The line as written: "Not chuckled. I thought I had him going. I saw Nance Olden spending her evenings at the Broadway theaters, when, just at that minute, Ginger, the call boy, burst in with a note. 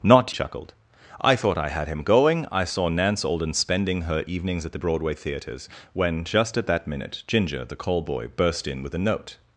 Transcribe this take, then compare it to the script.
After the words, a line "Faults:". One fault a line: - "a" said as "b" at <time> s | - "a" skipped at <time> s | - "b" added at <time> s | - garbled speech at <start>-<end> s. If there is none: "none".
"Not chuckled. I thought I had him going. I saw Nance Olden spending her evenings at the Broadway theaters, when, just at that minute, Ginger, the call boy, burst in with a note.
Faults:
none